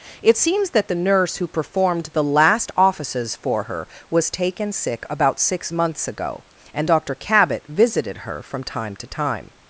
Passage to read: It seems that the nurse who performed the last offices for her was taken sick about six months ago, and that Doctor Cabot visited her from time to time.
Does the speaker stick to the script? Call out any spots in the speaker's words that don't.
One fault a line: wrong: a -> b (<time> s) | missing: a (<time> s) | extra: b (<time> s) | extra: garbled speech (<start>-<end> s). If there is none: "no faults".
missing: that (6.9 s)